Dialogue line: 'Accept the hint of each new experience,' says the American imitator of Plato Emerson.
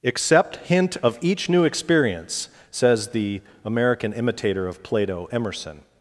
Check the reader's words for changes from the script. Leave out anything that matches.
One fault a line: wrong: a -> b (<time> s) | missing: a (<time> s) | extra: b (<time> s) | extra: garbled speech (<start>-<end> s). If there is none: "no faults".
missing: the (0.6 s)